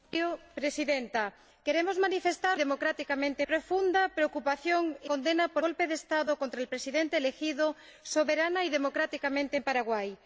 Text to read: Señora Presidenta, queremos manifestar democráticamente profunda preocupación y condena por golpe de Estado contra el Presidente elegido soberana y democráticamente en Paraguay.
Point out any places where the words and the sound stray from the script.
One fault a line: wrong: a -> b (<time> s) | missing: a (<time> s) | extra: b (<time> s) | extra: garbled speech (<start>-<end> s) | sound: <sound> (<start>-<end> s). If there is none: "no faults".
no faults